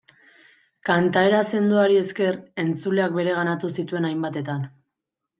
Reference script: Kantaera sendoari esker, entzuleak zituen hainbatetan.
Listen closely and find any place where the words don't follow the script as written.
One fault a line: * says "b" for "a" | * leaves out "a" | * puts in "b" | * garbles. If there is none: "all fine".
* puts in "bereganatu"